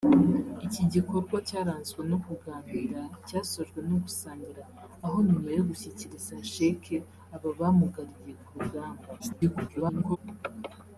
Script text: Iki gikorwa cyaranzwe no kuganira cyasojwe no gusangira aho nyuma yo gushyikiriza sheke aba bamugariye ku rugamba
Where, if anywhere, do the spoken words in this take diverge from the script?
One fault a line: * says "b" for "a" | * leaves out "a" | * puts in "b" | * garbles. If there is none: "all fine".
* garbles